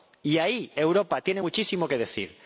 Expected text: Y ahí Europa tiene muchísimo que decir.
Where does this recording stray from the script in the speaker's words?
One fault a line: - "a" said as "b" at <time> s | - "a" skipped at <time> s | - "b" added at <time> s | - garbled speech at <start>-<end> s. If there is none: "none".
none